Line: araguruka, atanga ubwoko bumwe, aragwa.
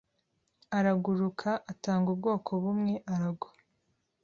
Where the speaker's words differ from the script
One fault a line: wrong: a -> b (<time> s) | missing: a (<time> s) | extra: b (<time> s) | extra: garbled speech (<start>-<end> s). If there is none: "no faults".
no faults